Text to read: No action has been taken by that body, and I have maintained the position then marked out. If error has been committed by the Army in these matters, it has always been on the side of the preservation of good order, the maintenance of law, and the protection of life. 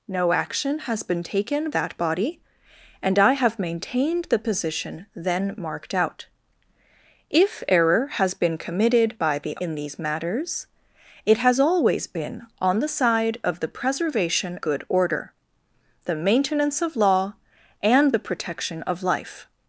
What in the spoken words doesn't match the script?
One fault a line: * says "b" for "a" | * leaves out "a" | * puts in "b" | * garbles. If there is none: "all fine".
* leaves out "by"
* leaves out "Army"
* leaves out "of"